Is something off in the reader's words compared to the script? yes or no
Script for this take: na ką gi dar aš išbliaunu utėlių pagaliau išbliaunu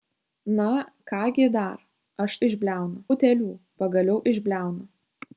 no